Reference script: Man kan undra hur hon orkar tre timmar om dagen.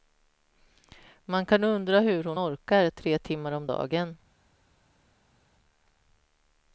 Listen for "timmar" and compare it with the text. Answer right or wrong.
right